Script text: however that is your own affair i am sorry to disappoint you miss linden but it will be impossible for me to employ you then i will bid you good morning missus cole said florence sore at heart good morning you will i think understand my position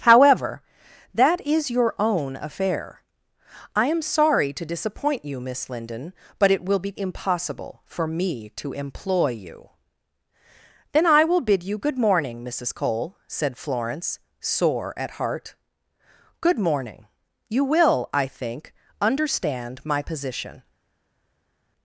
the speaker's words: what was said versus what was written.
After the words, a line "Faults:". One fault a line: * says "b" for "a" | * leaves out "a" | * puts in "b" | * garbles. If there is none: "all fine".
however that is your own affair i am sorry to disappoint you miss linden but it will be impossible for me to employ you then i will bid you good morning missus cole said florence sore at heart good morning you will i think understand my position
Faults:
all fine